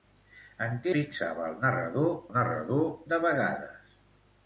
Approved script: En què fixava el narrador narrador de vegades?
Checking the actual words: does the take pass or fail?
pass